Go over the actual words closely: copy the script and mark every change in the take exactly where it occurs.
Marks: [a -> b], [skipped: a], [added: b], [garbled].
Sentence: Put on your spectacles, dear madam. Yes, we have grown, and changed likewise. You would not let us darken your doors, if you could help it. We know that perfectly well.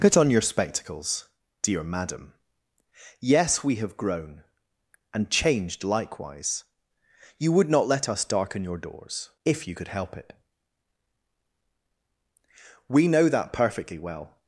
Put on your spectacles, dear madam. Yes, we have grown, and changed likewise. You would not let us darken your doors, if you could help it. We know that perfectly well.